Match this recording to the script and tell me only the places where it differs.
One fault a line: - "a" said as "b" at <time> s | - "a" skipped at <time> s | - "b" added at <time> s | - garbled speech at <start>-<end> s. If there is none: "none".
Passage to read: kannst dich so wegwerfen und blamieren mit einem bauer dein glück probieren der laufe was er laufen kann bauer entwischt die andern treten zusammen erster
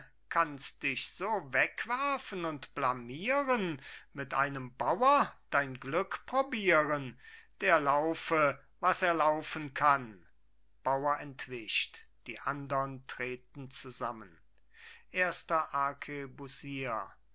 none